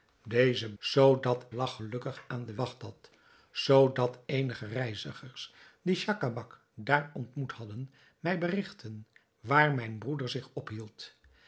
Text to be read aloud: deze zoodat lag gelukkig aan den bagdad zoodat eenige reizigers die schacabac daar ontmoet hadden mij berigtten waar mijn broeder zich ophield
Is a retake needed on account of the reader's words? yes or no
no